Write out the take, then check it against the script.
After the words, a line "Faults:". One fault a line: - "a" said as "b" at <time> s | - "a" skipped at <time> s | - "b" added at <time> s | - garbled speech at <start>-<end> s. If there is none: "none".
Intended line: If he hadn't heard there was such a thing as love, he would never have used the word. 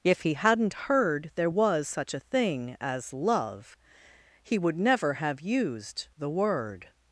If he hadn't heard there was such a thing as love, he would never have used the word.
Faults:
none